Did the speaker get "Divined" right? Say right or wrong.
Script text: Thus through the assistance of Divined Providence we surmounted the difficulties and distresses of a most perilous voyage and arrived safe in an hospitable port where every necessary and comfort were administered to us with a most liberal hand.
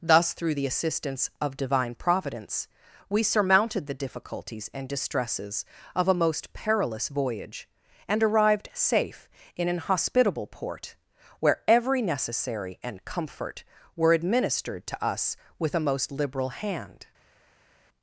wrong